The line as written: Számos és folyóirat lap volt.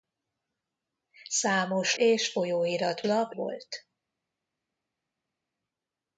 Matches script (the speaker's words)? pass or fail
pass